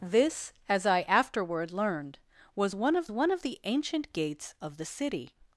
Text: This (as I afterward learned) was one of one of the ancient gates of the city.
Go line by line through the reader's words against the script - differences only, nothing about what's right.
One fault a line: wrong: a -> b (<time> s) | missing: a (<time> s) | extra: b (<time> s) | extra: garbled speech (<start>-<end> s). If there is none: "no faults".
no faults